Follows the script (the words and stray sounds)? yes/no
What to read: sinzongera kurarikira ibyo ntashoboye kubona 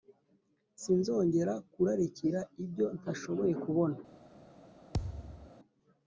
no